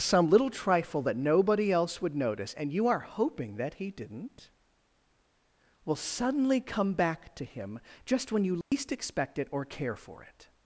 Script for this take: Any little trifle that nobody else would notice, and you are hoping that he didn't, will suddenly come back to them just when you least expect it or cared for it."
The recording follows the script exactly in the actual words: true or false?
false